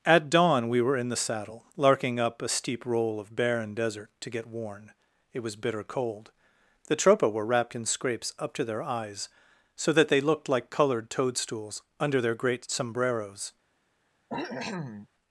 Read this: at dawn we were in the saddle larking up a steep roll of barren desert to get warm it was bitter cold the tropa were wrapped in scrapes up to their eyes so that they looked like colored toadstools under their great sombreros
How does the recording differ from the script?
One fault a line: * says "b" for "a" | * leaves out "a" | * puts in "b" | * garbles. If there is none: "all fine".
* says "worn" for "warm"